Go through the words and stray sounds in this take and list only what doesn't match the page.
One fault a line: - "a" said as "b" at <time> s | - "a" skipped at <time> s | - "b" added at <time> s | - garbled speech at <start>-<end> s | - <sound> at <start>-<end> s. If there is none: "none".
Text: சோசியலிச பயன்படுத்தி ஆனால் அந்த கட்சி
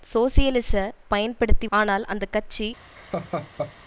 - laugh at 3.0-3.7 s